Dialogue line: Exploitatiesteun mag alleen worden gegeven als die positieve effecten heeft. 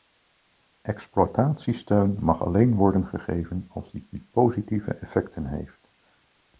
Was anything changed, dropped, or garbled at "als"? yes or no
no